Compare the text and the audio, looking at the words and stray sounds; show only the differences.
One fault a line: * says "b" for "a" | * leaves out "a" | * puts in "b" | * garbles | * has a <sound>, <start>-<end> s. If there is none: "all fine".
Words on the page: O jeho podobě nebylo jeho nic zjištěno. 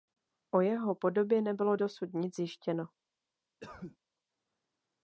* says "dosud" for "jeho"
* has a cough, 3.6-4.0 s